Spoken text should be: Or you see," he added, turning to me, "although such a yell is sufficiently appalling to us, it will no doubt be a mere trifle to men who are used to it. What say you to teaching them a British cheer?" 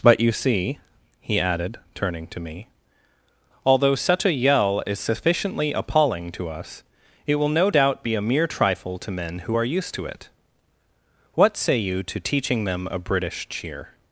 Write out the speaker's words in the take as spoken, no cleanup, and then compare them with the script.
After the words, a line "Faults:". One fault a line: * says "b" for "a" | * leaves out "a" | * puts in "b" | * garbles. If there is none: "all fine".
But you see," he added, turning to me, "although such a yell is sufficiently appalling to us, it will no doubt be a mere trifle to men who are used to it. What say you to teaching them a British cheer?"
Faults:
* says "But" for "Or"